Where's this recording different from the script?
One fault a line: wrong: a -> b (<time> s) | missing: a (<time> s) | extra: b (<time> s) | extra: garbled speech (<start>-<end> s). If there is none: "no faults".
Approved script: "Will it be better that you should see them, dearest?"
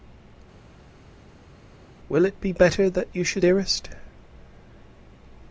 missing: see them (3.4 s)